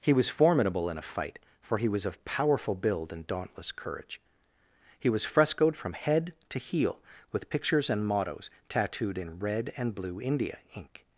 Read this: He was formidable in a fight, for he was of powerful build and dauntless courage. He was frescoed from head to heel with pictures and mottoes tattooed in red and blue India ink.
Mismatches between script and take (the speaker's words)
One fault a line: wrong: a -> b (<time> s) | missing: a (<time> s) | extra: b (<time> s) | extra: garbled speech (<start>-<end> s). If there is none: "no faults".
no faults